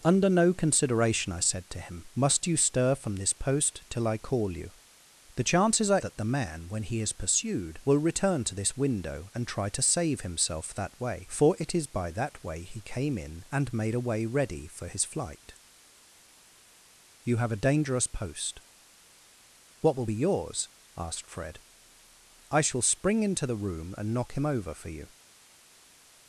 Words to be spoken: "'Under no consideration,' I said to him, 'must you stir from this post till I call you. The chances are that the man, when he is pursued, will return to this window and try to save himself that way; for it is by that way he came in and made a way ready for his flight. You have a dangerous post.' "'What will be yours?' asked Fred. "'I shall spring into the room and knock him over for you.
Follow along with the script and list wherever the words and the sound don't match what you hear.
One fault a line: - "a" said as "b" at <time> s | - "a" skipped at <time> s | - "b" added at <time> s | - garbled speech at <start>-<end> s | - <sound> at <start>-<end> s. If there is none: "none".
none